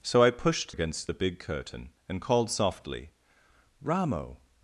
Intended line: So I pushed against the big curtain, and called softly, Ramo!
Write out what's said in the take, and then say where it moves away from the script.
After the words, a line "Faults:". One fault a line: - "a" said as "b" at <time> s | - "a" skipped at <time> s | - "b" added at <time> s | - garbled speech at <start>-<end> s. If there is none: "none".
So I pushed against the big curtain, and called softly, Ramo!
Faults:
none